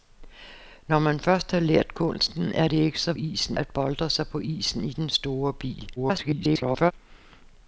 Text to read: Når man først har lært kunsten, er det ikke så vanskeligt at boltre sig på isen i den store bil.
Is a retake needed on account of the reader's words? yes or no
yes